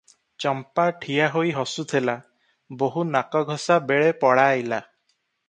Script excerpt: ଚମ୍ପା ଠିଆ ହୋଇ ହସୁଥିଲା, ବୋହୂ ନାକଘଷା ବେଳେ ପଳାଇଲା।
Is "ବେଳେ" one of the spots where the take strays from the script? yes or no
no